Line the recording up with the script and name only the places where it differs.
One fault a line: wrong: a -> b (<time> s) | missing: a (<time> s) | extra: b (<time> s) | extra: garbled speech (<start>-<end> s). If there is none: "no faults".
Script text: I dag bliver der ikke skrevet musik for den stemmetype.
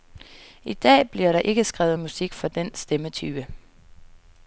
no faults